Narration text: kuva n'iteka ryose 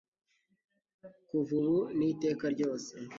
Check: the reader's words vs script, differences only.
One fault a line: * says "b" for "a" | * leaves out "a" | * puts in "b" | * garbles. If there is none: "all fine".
* puts in "ubu"